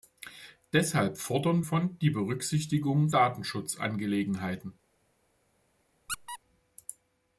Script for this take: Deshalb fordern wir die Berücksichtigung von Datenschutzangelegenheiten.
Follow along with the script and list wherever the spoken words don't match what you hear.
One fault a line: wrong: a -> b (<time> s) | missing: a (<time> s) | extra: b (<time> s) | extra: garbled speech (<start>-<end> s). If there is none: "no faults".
wrong: wir -> von (1.6 s)
missing: von (3.1 s)